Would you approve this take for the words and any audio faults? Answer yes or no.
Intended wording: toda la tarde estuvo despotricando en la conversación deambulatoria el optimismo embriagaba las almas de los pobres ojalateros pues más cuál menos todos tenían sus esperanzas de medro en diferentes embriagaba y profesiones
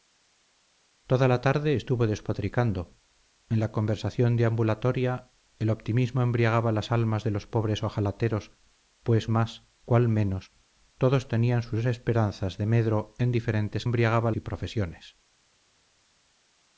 yes